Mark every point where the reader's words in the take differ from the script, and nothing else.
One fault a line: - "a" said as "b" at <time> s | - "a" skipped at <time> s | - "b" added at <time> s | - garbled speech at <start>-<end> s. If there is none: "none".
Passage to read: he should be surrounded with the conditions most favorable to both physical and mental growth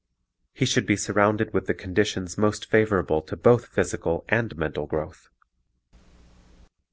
none